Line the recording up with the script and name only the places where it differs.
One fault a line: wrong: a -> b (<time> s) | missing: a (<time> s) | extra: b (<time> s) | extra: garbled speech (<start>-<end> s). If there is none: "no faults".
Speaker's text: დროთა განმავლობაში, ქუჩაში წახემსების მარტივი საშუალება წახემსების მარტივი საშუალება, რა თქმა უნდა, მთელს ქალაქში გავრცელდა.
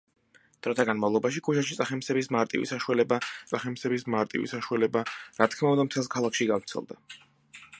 no faults